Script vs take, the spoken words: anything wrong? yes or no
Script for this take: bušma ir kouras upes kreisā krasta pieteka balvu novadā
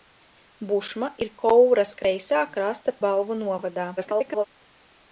yes